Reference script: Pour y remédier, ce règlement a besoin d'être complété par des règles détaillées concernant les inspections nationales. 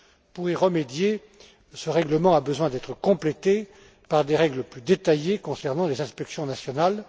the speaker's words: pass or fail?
fail